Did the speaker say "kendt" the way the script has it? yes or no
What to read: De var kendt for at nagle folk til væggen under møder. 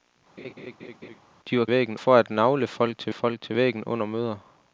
no